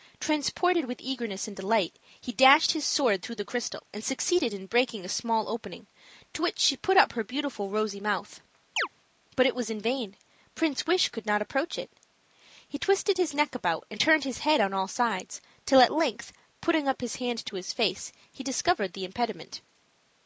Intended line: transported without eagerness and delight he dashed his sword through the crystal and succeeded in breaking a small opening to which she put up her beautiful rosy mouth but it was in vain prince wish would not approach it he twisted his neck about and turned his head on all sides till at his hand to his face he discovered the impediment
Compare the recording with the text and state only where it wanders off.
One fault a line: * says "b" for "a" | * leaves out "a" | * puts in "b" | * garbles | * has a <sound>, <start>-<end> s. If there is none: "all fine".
* says "with" for "without"
* has a chirp, 8.8-8.9 s
* says "could" for "would"
* puts in "length putting up"